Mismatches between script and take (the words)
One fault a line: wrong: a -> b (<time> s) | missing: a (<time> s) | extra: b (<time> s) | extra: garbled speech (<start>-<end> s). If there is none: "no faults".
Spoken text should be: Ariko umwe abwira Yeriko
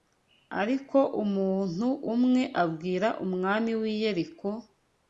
extra: umuntu (1.2 s)
extra: umwami w'i (3.2 s)